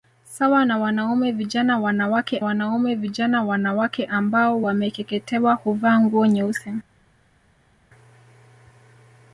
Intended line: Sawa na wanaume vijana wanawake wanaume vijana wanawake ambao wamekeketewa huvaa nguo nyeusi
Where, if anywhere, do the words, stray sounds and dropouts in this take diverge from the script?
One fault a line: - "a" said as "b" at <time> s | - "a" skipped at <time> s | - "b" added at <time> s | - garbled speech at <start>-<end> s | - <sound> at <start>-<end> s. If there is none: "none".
none